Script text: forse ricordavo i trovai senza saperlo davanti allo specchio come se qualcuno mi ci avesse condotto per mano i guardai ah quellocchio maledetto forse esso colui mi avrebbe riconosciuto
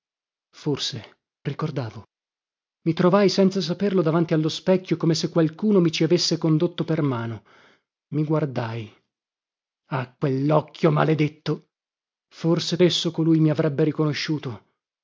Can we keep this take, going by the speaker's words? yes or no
yes